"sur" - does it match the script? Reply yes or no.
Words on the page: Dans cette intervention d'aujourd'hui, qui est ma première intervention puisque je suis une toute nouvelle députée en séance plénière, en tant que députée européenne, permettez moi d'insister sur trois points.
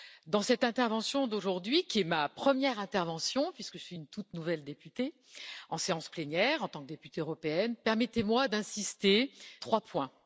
no